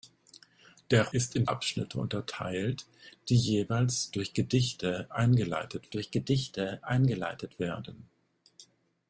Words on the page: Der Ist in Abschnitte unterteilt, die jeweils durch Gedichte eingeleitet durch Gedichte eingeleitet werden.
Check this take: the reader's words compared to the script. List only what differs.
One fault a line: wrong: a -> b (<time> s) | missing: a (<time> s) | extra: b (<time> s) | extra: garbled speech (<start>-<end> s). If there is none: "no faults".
no faults